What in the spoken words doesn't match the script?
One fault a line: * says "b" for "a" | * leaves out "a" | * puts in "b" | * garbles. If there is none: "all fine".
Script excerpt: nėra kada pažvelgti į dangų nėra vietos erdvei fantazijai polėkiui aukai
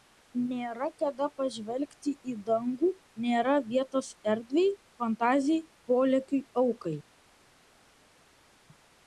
all fine